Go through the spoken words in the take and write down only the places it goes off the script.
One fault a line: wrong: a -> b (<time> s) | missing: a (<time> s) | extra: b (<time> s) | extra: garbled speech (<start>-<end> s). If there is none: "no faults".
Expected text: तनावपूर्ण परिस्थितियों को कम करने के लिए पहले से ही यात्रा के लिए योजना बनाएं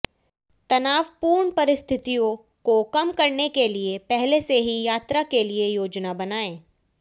no faults